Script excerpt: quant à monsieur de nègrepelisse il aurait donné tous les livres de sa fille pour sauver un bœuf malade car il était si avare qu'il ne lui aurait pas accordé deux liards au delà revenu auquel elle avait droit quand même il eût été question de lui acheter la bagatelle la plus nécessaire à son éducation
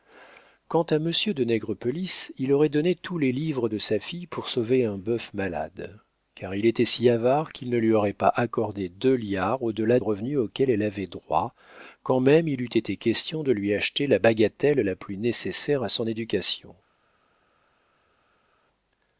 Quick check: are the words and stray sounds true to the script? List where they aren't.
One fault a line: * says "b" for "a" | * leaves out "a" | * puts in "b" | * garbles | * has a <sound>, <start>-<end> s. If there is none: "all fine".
all fine